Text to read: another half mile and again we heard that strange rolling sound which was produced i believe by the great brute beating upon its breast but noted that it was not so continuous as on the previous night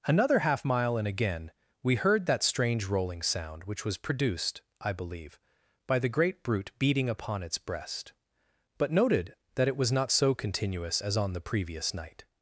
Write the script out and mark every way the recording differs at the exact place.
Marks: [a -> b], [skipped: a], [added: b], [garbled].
another half mile and again we heard that strange rolling sound which was produced i believe by the great brute beating upon its breast but noted that it was not so continuous as on the previous night